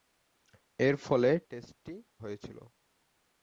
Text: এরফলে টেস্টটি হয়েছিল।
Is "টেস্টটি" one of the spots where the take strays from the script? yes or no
no